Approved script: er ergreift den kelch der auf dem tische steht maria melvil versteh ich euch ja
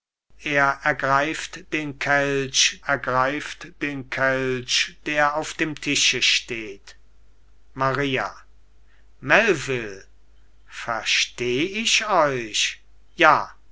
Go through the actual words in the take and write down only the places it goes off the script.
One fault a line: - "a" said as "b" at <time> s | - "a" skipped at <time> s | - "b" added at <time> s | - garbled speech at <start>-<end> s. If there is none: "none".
- "ergreift den kelch" added at 2.9 s